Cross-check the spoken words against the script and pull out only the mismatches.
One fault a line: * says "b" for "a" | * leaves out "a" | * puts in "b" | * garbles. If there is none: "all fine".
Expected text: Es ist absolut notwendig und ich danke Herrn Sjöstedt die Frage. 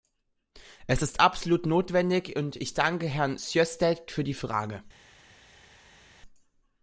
* puts in "für"